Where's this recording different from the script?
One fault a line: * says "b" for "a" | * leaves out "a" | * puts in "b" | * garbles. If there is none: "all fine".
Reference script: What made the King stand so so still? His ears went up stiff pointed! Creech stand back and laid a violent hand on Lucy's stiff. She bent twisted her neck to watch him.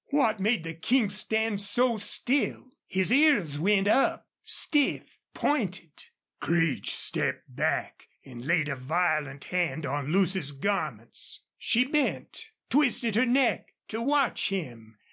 * leaves out "so"
* says "stepped" for "stand"
* says "garments" for "stiff"